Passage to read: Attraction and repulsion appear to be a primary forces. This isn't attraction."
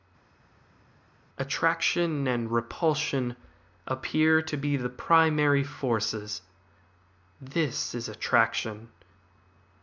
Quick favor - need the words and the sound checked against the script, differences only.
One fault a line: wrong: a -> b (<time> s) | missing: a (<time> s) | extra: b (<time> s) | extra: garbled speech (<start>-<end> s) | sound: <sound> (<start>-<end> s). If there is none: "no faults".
wrong: a -> the (4.8 s)
wrong: isn't -> is (7.9 s)